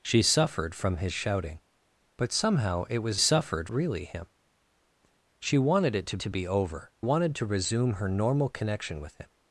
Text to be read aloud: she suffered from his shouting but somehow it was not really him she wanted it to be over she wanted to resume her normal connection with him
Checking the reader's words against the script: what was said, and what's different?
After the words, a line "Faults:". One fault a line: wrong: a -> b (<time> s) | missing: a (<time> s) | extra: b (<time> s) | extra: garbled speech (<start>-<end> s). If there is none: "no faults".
she suffered from his shouting but somehow it was suffered really him she wanted it to to be over wanted to resume her normal connection with him
Faults:
wrong: not -> suffered (3.2 s)
extra: to (6.2 s)
missing: she (6.9 s)